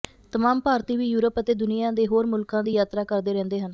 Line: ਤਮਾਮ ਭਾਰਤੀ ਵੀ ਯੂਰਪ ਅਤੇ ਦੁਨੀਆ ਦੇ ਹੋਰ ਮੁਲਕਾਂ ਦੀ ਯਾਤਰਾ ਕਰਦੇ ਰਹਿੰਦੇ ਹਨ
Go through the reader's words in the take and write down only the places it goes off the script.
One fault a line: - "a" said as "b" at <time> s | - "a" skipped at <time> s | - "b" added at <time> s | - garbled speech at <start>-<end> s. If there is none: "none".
none